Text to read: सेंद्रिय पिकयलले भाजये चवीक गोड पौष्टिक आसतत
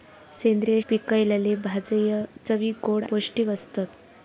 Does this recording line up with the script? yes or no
yes